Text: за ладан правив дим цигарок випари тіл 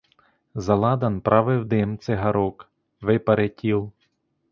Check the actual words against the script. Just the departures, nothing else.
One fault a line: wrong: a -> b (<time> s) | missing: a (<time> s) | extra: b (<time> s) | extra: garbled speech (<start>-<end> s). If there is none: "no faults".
no faults